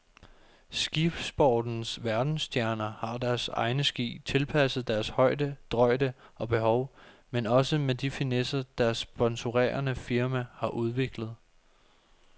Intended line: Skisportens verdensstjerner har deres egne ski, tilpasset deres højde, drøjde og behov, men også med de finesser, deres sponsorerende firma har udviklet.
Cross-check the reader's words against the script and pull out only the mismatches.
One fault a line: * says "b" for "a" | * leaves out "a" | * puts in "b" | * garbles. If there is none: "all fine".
all fine